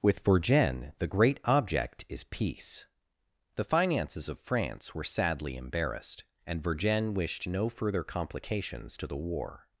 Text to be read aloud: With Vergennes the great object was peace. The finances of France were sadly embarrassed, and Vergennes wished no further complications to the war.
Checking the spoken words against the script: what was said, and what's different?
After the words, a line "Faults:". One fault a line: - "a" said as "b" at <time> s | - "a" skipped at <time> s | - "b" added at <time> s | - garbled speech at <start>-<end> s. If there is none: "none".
With Vergennes the great object is peace. The finances of France were sadly embarrassed, and Vergennes wished no further complications to the war.
Faults:
- "was" said as "is" at 2.1 s